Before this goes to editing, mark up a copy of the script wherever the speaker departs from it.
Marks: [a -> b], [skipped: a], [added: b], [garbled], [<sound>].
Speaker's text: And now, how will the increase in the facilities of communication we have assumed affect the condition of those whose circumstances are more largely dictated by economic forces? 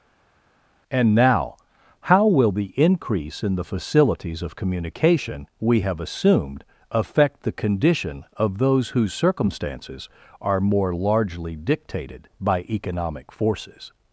And now, how will the increase in the facilities of communication we have assumed affect the condition of those whose circumstances are more largely dictated by economic forces?